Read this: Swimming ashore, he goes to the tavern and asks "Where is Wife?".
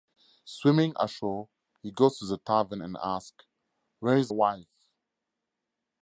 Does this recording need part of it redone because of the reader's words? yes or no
no